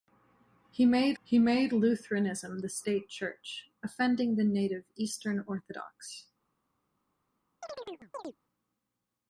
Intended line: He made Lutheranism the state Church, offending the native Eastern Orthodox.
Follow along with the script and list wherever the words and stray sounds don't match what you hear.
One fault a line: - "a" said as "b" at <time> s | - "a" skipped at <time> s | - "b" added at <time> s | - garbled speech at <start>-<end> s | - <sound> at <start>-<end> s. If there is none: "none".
- "he made" added at 1.2 s
- chirp at 7.6-8.4 s